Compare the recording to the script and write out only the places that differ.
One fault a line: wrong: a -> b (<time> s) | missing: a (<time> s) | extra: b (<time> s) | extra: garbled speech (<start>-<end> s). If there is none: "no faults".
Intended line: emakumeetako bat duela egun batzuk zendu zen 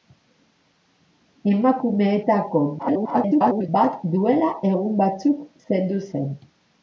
extra: garbled speech (2.8-3.7 s)